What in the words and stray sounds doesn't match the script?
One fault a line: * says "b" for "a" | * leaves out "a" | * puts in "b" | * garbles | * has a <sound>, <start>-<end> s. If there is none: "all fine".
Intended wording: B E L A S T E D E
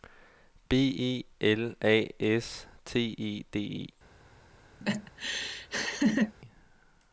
* has a laugh, 4.8-6.3 s